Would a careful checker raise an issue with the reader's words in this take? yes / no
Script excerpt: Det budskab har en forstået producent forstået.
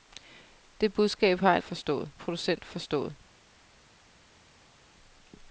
no